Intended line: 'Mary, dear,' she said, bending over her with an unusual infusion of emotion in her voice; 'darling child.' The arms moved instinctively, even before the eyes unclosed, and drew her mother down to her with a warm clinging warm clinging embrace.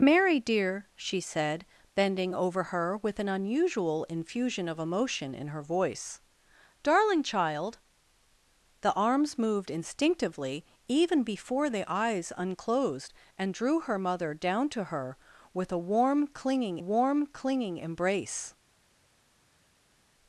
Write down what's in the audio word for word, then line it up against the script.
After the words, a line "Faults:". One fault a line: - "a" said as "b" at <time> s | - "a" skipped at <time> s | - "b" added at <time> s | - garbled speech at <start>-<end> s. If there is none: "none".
'Mary, dear,' she said, bending over her with an unusual infusion of emotion in her voice; 'darling child.' The arms moved instinctively, even before the eyes unclosed, and drew her mother down to her with a warm clinging warm clinging embrace.
Faults:
none